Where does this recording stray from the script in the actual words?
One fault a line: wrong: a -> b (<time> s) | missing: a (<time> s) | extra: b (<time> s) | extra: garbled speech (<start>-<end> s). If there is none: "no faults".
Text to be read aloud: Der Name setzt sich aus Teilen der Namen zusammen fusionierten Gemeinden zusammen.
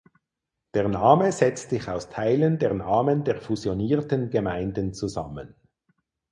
wrong: zusammen -> der (3.3 s)